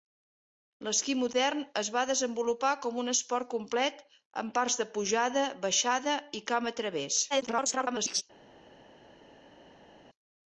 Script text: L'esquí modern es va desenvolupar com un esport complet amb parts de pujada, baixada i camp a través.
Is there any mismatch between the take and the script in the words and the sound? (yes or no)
yes